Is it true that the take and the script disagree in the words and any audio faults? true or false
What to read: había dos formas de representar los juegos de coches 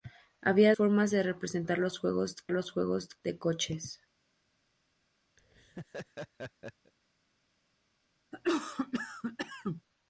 true